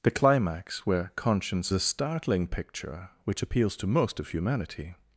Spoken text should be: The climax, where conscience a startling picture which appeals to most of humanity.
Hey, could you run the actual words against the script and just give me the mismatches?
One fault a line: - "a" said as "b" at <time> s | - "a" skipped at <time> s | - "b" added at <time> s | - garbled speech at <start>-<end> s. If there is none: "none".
none